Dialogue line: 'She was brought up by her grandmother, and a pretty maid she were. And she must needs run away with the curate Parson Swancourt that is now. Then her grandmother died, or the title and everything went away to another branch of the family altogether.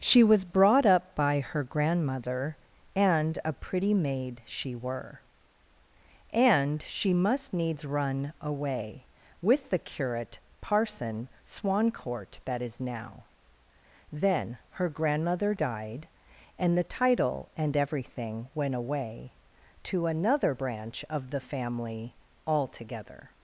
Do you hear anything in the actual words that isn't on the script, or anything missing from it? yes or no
yes